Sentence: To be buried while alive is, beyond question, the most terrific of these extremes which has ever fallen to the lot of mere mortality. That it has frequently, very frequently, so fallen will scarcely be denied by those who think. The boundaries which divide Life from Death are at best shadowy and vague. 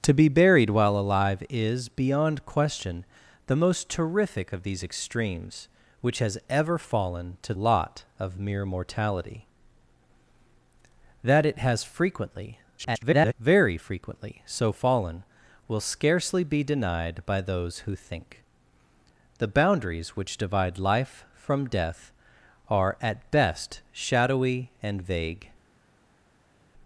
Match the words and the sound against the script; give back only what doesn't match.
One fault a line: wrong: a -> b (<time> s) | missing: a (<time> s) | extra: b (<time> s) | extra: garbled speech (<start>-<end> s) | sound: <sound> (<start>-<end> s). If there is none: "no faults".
missing: the (7.5 s)
extra: garbled speech (12.8-13.3 s)